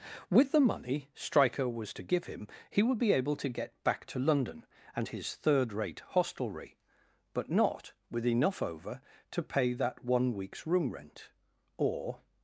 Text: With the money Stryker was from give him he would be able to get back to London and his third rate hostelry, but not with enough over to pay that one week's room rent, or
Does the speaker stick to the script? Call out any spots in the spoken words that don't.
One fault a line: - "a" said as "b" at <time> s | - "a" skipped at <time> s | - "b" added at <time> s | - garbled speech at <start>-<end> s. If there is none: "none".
- "from" said as "to" at 1.9 s